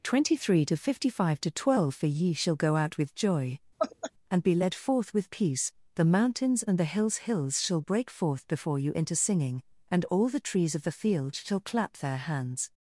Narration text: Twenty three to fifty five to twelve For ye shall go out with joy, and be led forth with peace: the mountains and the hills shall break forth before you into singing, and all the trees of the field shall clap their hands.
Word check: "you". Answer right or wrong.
right